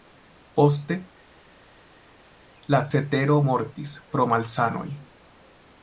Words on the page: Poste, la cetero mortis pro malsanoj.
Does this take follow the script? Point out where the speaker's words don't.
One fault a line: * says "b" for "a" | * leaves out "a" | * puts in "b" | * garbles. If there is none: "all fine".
all fine